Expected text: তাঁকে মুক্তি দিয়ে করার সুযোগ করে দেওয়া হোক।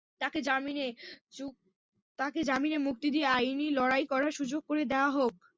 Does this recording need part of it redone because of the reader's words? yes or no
yes